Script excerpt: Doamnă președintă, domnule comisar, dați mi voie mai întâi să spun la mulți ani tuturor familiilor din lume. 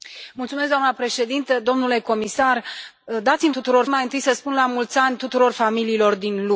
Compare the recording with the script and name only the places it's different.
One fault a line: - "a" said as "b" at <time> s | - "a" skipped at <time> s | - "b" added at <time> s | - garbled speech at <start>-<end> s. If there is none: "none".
- "voie" said as "tuturor" at 3.5 s